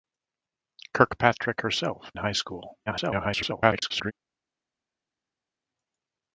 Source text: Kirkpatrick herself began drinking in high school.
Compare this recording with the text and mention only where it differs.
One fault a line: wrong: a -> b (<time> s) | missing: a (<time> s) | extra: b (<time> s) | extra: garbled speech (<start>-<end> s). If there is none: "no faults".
missing: began drinking in (2.1 s)
extra: garbled speech (2.9-4.1 s)